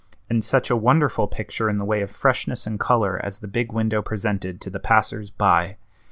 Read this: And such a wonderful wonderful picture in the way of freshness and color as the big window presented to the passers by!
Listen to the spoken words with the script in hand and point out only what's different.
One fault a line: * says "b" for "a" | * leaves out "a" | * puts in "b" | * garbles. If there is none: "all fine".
* leaves out "wonderful"